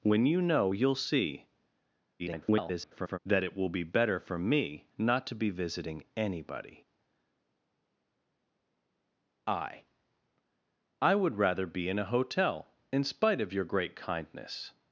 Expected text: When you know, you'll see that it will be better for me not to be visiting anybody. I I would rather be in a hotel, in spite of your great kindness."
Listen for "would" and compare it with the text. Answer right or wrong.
right